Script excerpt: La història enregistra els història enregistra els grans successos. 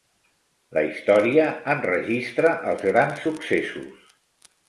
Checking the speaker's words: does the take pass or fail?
fail